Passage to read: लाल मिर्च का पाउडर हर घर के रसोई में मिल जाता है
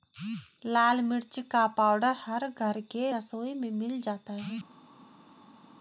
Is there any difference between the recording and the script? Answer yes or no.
no